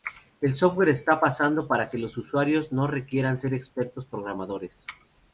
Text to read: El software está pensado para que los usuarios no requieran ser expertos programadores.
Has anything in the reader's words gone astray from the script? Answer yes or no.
no